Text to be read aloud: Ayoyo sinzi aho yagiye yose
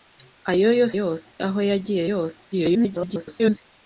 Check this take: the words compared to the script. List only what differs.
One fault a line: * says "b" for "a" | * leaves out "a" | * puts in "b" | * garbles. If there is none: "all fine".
* says "yose" for "sinzi"
* garbles